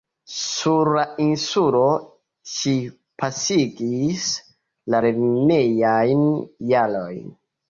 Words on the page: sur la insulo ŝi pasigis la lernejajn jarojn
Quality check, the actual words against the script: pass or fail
pass